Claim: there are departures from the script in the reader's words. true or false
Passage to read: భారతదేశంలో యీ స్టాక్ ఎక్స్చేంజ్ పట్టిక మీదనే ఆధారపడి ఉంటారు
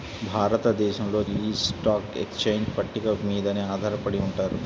false